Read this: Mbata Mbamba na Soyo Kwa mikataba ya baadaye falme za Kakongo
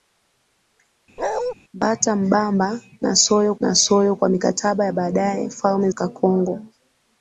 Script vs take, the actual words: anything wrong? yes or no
yes